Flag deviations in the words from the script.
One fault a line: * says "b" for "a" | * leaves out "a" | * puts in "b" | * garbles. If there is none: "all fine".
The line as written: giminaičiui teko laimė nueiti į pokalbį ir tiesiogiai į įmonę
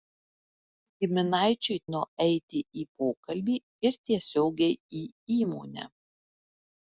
* leaves out "teko laimė"